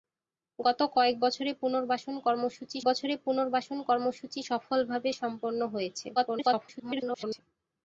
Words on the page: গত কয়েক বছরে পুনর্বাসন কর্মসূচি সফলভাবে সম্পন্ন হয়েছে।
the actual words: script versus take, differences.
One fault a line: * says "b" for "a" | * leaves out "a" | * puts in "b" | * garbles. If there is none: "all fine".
* puts in "বছরে পুনর্বাসন কর্মসূচি"
* garbles